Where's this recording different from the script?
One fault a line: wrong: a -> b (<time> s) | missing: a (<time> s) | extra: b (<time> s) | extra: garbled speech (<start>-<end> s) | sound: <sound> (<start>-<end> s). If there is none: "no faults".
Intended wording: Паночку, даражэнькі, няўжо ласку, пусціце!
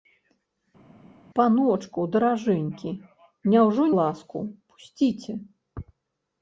no faults